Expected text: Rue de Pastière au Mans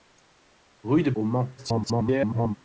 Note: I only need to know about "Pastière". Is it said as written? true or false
false